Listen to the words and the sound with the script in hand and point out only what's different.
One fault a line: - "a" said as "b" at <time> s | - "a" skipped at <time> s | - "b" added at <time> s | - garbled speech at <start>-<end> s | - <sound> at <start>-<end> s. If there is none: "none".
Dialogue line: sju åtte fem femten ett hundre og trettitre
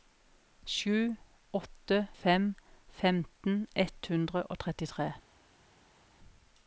none